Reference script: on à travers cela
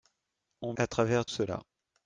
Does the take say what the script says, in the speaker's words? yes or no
yes